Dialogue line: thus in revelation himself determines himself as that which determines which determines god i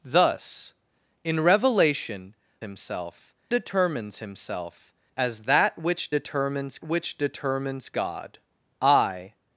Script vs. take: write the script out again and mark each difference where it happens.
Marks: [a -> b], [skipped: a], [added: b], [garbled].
thus in revelation himself determines himself as that which determines which determines god i